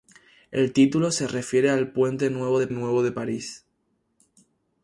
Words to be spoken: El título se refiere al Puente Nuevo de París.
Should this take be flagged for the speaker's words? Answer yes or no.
yes